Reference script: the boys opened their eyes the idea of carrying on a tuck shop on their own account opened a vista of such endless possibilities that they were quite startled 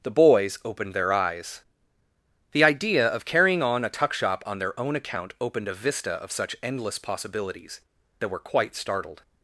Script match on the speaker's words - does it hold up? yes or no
no